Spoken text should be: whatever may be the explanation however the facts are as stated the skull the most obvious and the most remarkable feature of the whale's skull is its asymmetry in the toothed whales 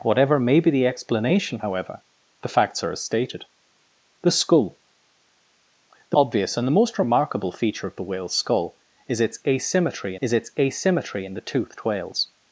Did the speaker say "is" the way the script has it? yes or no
yes